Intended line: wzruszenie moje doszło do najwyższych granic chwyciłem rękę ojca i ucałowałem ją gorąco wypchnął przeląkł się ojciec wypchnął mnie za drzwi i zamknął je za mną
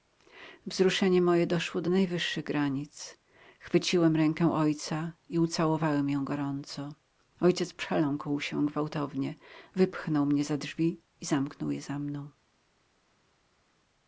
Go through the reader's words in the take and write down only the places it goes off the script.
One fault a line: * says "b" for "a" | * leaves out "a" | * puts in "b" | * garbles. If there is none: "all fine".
* says "ojciec" for "wypchnął"
* says "gwałtownie" for "ojciec"